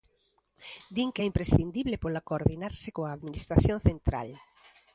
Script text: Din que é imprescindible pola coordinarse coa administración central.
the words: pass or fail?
pass